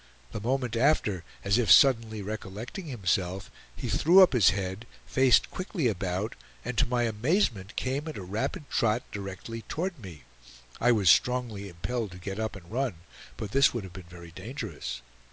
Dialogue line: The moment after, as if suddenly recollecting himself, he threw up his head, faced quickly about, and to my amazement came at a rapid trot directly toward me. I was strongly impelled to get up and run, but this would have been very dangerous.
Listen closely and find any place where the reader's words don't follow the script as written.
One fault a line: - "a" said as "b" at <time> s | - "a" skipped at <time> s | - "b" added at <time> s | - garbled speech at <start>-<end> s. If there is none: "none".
none